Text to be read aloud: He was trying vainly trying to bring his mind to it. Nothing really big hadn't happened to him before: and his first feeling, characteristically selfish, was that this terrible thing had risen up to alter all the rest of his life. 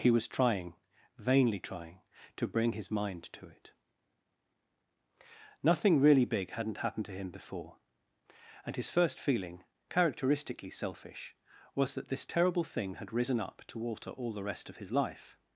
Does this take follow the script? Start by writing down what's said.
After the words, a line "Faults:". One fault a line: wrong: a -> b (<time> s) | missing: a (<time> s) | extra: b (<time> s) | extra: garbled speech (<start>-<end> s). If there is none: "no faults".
He was trying vainly trying to bring his mind to it. Nothing really big hadn't happened to him before: and his first feeling, characteristically selfish, was that this terrible thing had risen up to alter all the rest of his life.
Faults:
no faults